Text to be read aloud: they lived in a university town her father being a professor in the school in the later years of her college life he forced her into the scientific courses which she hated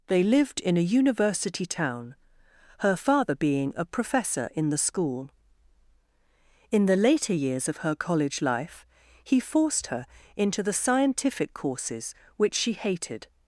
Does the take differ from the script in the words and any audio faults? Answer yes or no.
no